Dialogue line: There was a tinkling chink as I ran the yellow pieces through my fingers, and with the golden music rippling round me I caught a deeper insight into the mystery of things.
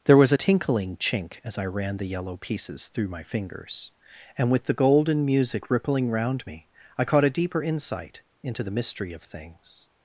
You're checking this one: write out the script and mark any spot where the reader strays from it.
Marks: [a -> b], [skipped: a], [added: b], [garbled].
There was a tinkling chink as I ran the yellow pieces through my fingers, and with the golden music rippling round me I caught a deeper insight into the mystery of things.